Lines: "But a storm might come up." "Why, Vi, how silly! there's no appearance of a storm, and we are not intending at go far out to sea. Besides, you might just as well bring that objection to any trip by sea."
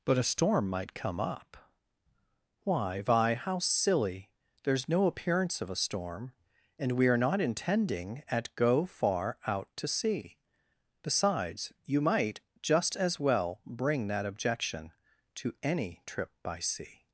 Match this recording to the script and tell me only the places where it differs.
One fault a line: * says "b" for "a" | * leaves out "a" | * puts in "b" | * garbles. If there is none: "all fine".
all fine